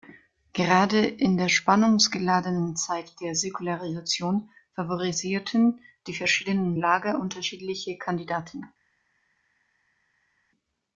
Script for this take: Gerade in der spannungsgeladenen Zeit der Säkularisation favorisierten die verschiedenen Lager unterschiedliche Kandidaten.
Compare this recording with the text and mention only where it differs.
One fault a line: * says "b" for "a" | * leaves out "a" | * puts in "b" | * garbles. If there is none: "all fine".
all fine